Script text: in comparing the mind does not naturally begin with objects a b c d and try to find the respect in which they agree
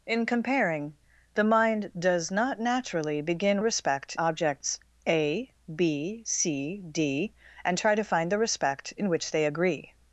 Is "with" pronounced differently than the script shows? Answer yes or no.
yes